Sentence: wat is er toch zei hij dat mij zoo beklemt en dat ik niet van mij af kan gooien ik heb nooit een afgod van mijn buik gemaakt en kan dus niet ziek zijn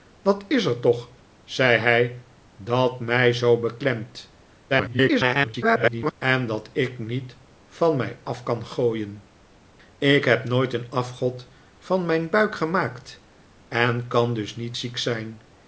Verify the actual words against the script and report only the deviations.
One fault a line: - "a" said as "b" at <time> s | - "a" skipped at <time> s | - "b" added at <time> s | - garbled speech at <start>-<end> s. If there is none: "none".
- garbled speech at 4.7-6.1 s